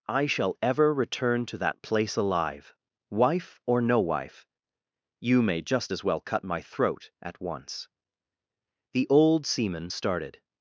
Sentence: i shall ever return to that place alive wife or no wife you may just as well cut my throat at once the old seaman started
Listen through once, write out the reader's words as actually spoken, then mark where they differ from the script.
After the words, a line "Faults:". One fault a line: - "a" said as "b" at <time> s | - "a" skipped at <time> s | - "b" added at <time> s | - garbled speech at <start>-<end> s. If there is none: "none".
i shall ever return to that place alive wife or no wife you may just as well cut my throat at once the old seaman started
Faults:
none